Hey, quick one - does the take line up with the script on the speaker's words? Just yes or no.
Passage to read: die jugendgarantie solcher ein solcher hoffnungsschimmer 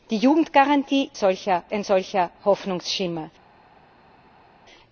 yes